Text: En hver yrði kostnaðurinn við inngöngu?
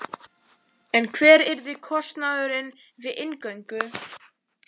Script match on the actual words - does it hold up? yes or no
yes